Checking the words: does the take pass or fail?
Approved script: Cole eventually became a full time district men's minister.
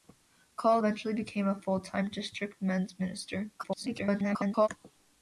fail